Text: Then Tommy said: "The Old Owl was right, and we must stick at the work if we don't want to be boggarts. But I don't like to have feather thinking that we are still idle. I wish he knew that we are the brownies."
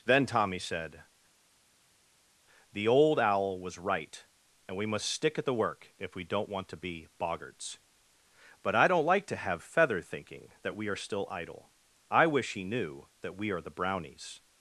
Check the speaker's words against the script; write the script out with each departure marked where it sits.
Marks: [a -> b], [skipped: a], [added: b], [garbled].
Then Tommy said: "The Old Owl was right, and we must stick at the work if we don't want to be boggarts. But I don't like to have feather thinking that we are still idle. I wish he knew that we are the brownies."